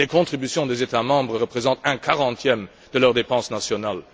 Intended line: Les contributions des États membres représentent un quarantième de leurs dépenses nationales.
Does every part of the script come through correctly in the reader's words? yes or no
yes